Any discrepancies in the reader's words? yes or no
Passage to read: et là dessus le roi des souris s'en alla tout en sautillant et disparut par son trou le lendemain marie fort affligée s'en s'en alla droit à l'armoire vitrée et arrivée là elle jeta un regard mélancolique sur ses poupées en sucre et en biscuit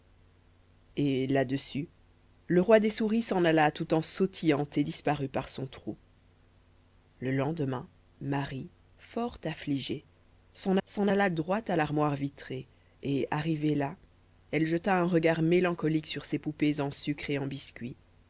no